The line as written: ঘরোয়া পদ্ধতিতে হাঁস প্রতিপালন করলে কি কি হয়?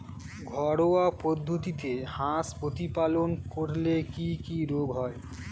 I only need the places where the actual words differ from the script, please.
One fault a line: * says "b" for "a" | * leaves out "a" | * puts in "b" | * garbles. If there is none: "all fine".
* puts in "রোগ"